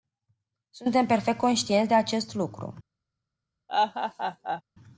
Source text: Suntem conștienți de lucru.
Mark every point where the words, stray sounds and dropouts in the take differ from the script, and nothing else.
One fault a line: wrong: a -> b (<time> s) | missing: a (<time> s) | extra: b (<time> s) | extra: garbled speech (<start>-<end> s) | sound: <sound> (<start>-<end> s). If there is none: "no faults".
extra: perfect (1.1 s)
extra: acest (1.9 s)
sound: laugh (3.7-4.6 s)